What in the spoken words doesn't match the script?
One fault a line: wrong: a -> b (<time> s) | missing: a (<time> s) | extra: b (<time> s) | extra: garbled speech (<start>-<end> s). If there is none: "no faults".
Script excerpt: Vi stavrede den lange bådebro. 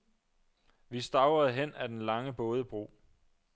extra: hen ad (1.5 s)